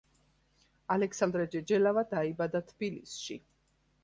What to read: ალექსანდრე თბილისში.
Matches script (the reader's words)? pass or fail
fail